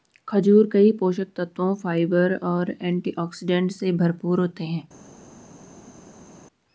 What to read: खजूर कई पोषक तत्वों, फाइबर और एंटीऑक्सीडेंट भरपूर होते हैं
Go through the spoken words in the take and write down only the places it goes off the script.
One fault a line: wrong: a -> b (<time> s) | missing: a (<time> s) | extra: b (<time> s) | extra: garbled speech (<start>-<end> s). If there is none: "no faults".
extra: से (3.7 s)